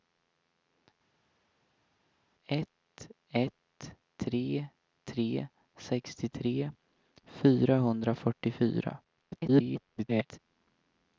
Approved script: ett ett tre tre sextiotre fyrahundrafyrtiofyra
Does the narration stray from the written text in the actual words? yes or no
yes